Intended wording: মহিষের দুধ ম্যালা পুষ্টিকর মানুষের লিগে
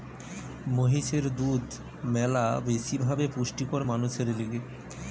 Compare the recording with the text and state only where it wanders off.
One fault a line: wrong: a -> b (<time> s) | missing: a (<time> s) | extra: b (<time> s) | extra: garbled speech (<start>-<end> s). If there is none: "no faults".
extra: বেশি ভাবে (2.7 s)